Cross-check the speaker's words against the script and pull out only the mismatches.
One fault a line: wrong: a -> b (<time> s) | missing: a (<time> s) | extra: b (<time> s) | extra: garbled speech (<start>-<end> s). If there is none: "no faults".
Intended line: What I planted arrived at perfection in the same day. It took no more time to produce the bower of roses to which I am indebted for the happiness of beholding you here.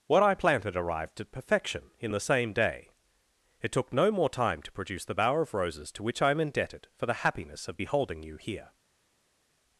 no faults